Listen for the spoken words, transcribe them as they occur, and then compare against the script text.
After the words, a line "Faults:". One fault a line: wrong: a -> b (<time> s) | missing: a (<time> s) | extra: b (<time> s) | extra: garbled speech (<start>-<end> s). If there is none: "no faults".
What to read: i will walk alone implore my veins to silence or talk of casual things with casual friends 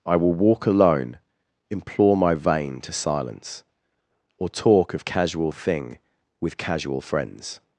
i will walk alone implore my vein to silence or talk of casual thing with casual friends
Faults:
wrong: veins -> vein (2.3 s)
wrong: things -> thing (5.5 s)